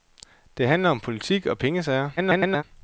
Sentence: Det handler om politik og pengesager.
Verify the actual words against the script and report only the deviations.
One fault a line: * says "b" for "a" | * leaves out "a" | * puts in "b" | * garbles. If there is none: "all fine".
* garbles